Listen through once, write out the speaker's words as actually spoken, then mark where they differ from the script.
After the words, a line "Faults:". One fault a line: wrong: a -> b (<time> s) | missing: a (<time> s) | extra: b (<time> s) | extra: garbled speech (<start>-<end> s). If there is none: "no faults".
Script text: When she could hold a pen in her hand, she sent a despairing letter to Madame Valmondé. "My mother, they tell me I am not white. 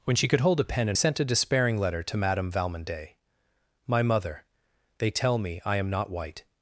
When she could hold a pen in sent a despairing letter to Madame Valmondé. "My mother, they tell me I am not white.
Faults:
missing: her hand she (1.0 s)